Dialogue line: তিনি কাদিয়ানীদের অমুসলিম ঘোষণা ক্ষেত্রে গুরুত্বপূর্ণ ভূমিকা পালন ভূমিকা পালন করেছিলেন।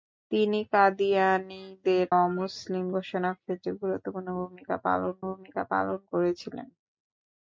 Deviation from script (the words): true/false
false